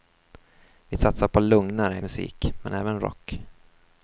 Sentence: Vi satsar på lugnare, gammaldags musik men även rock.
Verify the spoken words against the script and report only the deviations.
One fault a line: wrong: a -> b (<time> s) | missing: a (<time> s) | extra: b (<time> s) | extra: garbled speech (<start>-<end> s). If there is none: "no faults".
missing: gammaldags (2.0 s)